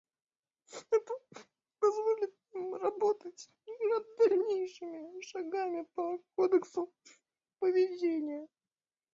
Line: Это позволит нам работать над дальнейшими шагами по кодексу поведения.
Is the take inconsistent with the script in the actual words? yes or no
no